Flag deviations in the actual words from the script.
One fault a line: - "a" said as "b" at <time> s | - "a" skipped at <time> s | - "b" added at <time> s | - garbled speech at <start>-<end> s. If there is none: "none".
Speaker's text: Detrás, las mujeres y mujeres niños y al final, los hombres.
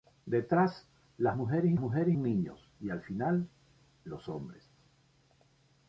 none